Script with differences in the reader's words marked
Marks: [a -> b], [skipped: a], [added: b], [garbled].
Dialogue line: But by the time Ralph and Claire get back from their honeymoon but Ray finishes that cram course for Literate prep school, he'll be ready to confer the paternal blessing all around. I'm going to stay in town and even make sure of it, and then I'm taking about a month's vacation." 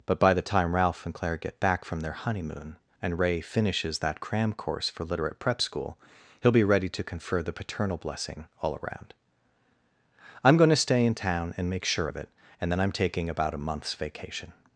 But by the time Ralph and Claire get back from their honeymoon [but -> and] Ray finishes that cram course for Literate prep school, he'll be ready to confer the paternal blessing all around. I'm going to stay in town and [skipped: even] make sure of it, and then I'm taking about a month's vacation."